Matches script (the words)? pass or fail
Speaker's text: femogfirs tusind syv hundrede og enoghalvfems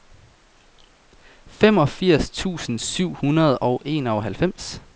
pass